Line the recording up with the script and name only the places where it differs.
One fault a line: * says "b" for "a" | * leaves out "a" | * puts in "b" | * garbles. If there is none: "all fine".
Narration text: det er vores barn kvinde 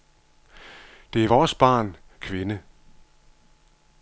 all fine